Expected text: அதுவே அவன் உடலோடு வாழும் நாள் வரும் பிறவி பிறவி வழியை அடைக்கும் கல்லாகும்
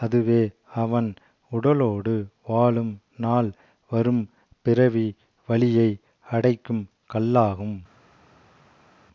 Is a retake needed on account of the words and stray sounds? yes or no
yes